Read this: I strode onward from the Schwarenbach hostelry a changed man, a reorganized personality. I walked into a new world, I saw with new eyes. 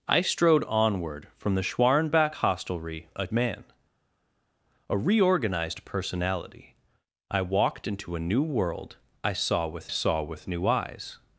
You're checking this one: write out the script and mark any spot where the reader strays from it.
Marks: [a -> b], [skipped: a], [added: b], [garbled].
I strode onward from the Schwarenbach hostelry a [skipped: changed] man, a reorganized personality. I walked into a new world, I saw with [added: saw with] new eyes.